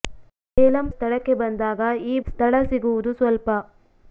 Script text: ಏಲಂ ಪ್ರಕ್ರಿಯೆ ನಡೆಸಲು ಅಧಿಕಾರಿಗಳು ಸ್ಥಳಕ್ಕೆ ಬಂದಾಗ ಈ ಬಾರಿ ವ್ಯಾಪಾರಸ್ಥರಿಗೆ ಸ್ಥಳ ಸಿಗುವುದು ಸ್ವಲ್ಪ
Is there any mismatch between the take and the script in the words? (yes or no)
yes